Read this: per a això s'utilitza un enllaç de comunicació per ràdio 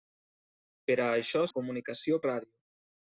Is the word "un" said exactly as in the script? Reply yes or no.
no